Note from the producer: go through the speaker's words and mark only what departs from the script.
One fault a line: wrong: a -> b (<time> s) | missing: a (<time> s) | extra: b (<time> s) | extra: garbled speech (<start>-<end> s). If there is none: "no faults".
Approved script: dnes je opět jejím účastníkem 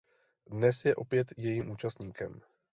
no faults